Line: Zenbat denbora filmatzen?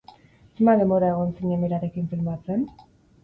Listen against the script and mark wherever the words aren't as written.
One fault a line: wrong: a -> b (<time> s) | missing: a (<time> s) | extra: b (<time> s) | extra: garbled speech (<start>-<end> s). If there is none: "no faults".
extra: egon zinen berarekin (1.2 s)